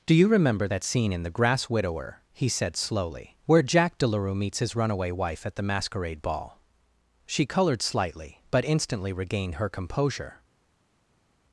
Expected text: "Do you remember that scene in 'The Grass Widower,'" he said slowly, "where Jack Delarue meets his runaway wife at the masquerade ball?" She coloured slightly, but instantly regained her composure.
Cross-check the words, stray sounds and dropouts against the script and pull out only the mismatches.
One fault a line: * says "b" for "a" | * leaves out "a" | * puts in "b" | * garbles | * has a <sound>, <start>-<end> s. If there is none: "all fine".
all fine